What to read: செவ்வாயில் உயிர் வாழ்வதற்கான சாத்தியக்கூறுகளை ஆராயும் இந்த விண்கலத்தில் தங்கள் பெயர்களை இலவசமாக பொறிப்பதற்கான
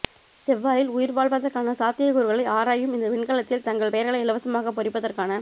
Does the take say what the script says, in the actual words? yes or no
yes